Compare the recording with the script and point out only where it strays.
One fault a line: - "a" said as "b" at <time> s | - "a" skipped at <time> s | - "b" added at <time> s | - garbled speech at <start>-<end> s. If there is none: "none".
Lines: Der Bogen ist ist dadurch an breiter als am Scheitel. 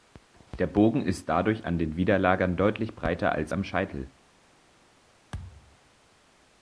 - "ist" skipped at 1.3 s
- "den Widerlagern deutlich" added at 1.8 s